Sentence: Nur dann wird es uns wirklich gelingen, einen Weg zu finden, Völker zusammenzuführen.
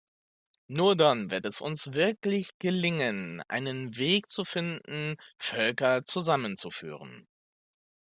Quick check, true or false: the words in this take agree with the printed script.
true